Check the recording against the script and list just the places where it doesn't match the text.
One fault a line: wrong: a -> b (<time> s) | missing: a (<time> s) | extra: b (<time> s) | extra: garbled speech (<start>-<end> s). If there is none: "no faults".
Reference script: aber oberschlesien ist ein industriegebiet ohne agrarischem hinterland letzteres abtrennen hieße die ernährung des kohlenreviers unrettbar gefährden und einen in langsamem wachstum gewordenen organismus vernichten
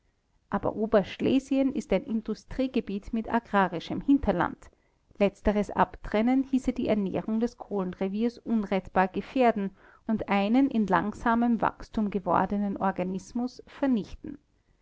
wrong: ohne -> mit (3.1 s)